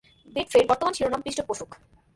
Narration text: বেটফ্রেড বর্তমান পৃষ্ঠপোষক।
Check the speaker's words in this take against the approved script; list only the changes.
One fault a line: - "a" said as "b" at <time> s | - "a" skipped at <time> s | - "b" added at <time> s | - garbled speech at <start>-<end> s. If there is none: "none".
- "শিরোনাম" added at 1.0 s